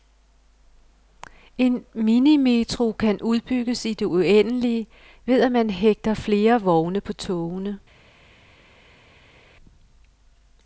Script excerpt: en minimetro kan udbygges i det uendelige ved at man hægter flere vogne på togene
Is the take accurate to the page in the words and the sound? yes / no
yes